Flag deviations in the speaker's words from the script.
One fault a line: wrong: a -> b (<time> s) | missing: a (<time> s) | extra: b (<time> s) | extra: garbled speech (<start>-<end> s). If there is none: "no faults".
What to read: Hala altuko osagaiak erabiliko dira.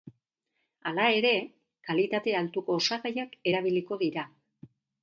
extra: ere kalitate (1.2 s)